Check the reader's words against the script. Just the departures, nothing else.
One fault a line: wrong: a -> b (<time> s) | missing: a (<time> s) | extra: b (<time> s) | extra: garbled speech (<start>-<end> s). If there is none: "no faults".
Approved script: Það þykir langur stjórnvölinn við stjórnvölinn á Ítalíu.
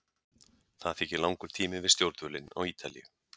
wrong: stjórnvölinn -> tími (1.6 s)